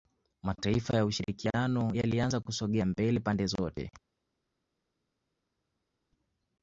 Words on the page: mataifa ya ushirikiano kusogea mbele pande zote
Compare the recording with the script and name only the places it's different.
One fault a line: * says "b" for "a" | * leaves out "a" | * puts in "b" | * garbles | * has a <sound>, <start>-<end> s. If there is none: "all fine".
* puts in "yalianza"